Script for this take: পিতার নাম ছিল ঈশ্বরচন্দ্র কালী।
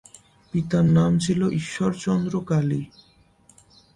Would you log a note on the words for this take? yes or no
no